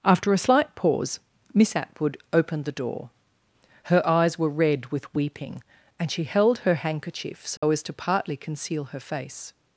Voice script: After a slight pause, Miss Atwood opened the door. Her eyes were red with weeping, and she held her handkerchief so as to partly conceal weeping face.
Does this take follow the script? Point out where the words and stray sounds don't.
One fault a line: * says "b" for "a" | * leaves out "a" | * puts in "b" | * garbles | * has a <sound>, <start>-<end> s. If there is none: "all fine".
* has a dropout, 7.6-7.6 s
* says "her" for "weeping"